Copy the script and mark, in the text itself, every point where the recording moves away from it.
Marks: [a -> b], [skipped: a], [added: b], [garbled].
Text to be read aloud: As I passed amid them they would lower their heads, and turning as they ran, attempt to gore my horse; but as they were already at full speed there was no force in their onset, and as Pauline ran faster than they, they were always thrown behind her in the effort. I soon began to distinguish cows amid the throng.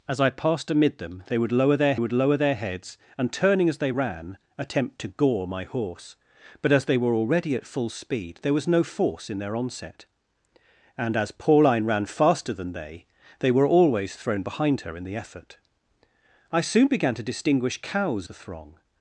As I passed amid them they would lower their [added: would lower their] heads, and turning as they ran, attempt to gore my horse; but as they were already at full speed there was no force in their onset, and as Pauline ran faster than they, they were always thrown behind her in the effort. I soon began to distinguish cows [skipped: amid] the throng.